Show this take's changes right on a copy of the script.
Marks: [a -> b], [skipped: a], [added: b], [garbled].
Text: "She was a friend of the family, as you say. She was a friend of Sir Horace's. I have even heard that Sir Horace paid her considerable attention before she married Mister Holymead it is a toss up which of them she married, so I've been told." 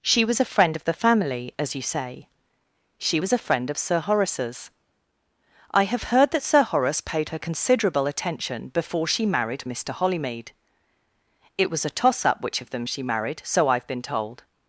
"She was a friend of the family, as you say. She was a friend of Sir Horace's. I have [skipped: even] heard that Sir Horace paid her considerable attention before she married Mister Holymead it [is -> was] a toss up which of them she married, so I've been told."